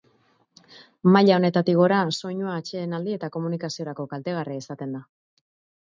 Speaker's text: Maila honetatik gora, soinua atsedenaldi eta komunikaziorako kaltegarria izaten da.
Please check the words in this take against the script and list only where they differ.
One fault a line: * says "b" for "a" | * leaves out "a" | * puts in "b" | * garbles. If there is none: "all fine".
all fine